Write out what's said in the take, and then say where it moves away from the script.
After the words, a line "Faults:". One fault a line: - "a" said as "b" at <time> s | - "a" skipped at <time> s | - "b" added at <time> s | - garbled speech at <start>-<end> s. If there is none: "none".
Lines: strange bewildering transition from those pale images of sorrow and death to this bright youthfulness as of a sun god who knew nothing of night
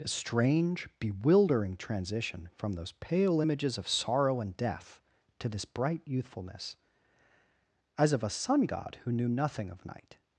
a strange bewildering transition from those pale images of sorrow and death to this bright youthfulness as of a sun god who knew nothing of night
Faults:
- "a" added at 0.0 s